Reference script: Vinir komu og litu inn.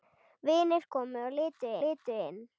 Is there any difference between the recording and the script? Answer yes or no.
yes